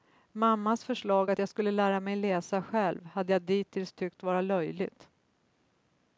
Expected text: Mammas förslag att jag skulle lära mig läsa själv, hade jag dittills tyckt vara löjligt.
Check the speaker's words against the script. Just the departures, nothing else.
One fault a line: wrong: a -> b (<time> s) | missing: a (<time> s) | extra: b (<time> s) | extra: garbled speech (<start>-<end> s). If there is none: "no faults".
no faults